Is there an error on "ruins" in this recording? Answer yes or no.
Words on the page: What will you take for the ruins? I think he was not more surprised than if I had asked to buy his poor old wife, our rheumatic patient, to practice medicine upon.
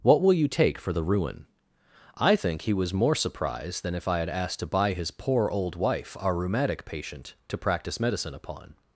yes